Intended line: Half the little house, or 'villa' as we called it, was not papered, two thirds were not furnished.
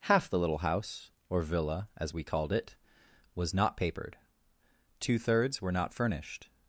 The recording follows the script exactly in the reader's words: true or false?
true